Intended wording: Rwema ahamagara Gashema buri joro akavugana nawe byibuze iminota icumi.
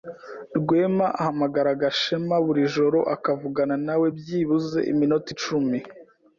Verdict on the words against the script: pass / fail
pass